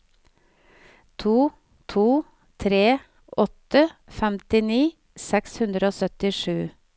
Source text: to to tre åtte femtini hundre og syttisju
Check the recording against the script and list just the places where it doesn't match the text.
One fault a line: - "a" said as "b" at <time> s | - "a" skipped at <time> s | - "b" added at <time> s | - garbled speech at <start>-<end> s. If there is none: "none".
- "seks" added at 5.3 s